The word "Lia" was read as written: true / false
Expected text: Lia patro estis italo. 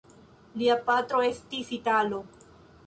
true